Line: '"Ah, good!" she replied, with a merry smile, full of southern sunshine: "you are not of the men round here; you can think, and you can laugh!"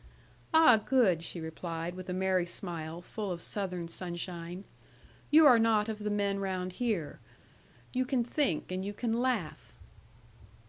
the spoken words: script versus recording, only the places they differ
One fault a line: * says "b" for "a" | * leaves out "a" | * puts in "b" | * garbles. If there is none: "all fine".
all fine